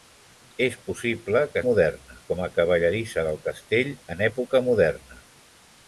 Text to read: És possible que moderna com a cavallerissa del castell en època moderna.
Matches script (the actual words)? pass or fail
pass